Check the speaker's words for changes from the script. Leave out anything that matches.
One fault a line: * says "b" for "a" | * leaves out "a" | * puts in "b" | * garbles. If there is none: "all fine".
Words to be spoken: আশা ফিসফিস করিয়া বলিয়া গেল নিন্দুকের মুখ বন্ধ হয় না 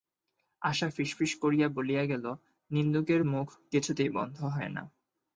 * puts in "কিছুতেই"